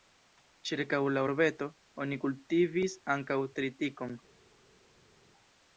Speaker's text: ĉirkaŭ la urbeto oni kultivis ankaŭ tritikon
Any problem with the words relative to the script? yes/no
no